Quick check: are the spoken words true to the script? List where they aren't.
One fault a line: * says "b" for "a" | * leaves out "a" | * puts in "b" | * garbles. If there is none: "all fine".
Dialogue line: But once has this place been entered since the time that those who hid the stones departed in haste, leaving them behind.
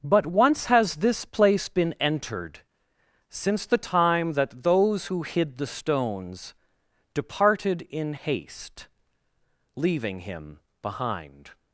* says "him" for "them"